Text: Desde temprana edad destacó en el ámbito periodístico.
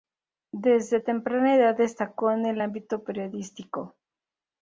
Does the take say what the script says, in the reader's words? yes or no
yes